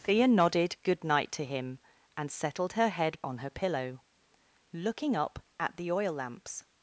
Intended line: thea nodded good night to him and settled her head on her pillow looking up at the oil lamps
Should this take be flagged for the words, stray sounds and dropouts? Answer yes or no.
no